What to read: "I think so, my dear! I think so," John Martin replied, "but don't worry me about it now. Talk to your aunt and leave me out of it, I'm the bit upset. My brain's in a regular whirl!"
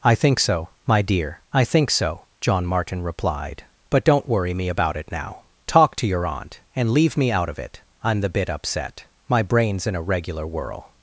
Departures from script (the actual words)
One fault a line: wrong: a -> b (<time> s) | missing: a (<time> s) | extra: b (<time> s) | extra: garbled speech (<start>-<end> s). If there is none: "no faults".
no faults